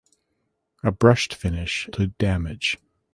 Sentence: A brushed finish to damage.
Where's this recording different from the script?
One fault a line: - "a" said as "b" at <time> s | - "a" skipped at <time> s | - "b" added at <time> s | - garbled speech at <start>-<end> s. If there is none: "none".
none